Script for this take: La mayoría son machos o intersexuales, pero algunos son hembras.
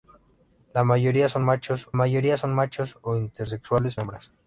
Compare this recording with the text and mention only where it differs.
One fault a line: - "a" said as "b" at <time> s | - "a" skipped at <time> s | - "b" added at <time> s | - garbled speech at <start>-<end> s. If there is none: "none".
- "o intersexuales pero algunos son" said as "mayoría son machos o intersexuales" at 1.9 s